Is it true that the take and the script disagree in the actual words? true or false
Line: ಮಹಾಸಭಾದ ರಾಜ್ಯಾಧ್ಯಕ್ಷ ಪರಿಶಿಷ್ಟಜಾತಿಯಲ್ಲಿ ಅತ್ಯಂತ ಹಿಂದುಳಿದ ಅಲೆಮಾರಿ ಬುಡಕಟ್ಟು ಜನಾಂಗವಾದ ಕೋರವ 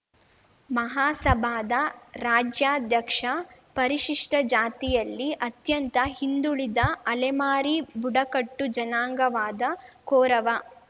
false